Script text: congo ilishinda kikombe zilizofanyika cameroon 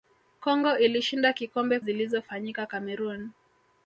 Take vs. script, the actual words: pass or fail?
pass